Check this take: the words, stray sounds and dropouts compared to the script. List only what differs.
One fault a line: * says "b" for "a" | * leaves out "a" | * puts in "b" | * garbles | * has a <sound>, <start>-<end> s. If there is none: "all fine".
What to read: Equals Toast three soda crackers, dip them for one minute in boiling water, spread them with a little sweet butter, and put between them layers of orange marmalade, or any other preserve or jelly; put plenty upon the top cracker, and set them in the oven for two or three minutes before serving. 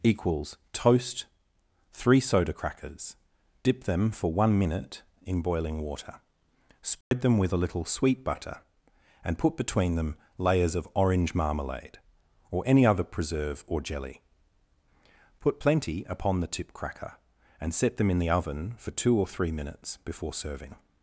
* has a dropout, 7.0-7.1 s
* says "tip" for "top"